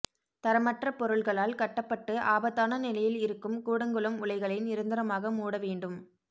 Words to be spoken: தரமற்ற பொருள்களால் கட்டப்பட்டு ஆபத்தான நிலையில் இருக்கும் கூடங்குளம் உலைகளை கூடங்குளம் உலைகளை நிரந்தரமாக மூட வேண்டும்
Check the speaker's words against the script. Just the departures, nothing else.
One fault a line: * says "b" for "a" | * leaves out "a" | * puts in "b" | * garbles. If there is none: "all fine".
* leaves out "கூடங்குளம் உலைகளை"